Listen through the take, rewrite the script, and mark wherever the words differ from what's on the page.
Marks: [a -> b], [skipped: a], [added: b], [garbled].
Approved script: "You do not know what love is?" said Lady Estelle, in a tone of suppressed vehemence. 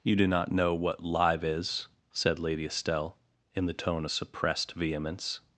"You do not know what [love -> live] is?" said Lady Estelle, in [a -> the] tone of suppressed vehemence.